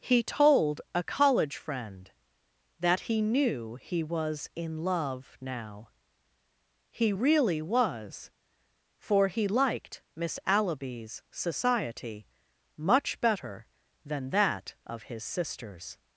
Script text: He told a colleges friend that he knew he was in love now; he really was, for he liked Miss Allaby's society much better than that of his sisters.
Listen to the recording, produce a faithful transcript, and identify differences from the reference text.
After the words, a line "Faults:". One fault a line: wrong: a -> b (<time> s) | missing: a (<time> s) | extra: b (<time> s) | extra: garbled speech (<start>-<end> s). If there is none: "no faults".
He told a college friend that he knew he was in love now; he really was, for he liked Miss Allaby's society much better than that of his sisters.
Faults:
wrong: colleges -> college (1.0 s)